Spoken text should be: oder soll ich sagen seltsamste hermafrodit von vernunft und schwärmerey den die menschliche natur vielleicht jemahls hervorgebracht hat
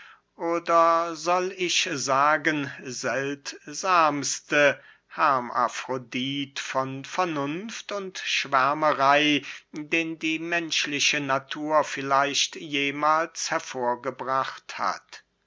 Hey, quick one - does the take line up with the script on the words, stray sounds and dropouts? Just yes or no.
yes